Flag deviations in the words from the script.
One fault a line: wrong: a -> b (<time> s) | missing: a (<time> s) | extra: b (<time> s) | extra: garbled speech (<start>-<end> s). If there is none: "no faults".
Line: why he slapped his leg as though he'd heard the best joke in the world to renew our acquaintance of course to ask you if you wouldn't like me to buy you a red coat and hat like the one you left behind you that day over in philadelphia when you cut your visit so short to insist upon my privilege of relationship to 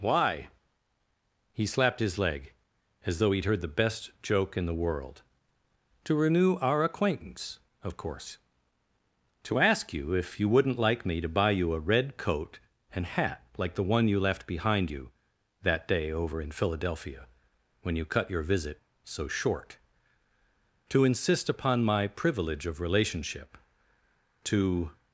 no faults